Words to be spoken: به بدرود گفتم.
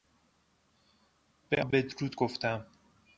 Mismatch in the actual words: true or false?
false